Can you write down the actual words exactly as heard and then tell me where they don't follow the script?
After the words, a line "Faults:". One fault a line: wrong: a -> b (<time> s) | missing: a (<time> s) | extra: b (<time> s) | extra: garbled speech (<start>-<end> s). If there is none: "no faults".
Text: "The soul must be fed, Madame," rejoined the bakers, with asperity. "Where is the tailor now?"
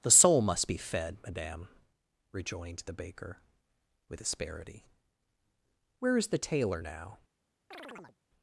"The soul must be fed, Madame," rejoined the baker, with asperity. "Where is the tailor now?"
Faults:
wrong: bakers -> baker (2.9 s)